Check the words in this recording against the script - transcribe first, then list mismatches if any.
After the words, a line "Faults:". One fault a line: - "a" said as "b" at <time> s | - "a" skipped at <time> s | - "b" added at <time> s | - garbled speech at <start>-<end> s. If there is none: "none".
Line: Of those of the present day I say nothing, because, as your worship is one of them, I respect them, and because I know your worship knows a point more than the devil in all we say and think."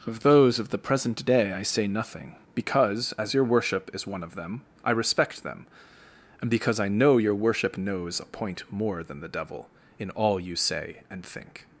Of those of the present day I say nothing, because, as your worship is one of them, I respect them, and because I know your worship knows a point more than the devil in all you say and think."
Faults:
- "we" said as "you" at 10.4 s